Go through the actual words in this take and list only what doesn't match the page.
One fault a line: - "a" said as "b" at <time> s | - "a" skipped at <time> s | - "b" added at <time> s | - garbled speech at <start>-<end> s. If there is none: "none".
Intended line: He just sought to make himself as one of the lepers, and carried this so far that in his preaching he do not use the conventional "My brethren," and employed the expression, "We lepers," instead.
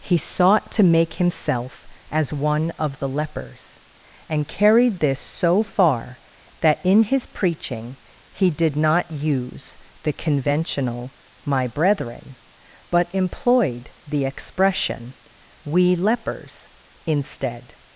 - "just" skipped at 0.2 s
- "do" said as "did" at 8.5 s
- "and" said as "but" at 12.9 s